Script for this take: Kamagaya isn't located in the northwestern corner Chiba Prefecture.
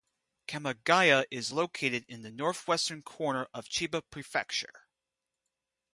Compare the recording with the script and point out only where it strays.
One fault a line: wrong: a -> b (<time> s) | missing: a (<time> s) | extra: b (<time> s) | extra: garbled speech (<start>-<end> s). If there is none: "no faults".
wrong: isn't -> is (1.3 s)
extra: of (3.5 s)